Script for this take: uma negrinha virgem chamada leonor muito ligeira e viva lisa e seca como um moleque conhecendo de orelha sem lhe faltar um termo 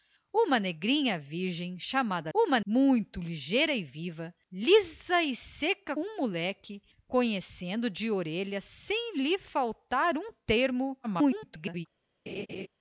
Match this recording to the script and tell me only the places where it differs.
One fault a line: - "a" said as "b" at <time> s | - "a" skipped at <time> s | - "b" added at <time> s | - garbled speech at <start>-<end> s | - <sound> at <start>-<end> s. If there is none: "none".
- "leonor" said as "uma" at 2.3 s
- "como" skipped at 6.0 s
- garbled speech at 11.0-11.9 s
- laugh at 12.3-12.7 s